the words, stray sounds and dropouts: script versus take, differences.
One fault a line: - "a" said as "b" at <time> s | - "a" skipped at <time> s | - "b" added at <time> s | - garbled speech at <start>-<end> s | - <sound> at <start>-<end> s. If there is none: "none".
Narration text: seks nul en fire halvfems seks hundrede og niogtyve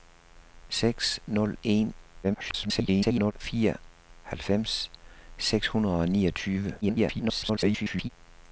- garbled speech at 2.2-3.3 s
- garbled speech at 6.8-8.1 s